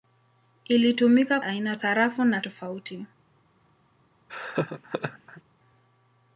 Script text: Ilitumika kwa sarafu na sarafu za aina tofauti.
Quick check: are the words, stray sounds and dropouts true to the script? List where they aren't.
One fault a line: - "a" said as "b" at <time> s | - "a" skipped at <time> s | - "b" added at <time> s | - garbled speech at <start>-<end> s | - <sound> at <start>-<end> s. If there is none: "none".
- "kwa" said as "aina" at 1.4 s
- "sarafu za aina" skipped at 2.4 s
- laugh at 4.3-5.4 s